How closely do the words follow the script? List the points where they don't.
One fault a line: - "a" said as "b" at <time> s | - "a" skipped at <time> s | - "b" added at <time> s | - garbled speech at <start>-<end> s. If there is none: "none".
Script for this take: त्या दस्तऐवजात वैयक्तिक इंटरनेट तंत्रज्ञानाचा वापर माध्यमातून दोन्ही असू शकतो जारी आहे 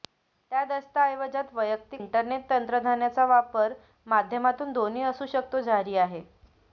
none